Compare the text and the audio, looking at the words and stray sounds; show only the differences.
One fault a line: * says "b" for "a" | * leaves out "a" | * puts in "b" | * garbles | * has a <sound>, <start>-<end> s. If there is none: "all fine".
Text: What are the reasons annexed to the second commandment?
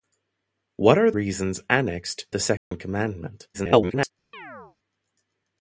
* leaves out "the"
* leaves out "to"
* has a dropout, 2.6-2.7 s
* garbles
* has a chirp, 4.3-4.8 s